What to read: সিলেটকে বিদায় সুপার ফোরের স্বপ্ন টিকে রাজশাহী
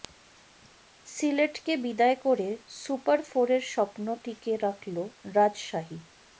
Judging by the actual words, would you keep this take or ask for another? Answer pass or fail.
fail